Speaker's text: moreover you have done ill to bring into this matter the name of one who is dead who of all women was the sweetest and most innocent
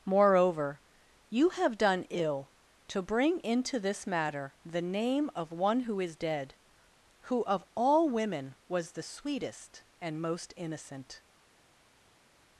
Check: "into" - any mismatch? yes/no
no